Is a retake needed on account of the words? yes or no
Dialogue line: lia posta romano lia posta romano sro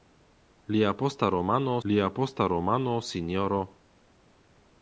no